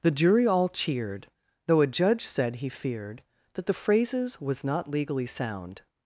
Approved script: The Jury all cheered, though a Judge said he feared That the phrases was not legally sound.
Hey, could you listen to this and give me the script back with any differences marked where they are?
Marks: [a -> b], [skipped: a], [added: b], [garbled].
The Jury all cheered, though a Judge said he feared That the phrases was not legally sound.